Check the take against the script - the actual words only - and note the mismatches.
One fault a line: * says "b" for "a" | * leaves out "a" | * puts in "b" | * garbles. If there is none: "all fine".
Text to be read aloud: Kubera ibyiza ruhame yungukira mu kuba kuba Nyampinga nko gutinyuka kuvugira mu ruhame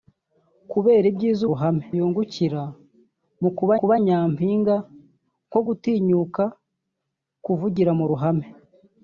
all fine